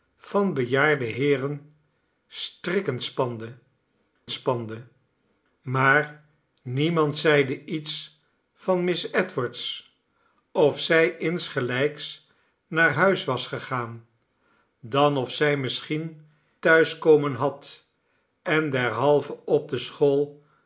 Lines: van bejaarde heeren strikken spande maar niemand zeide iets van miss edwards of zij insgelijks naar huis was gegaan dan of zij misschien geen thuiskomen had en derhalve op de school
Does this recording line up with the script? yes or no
no